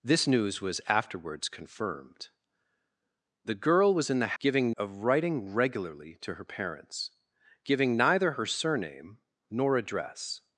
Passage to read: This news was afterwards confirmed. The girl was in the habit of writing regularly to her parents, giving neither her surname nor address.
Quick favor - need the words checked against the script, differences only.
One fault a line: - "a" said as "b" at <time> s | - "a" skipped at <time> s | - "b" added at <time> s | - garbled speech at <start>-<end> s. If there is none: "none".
- "habit" said as "giving" at 4.4 s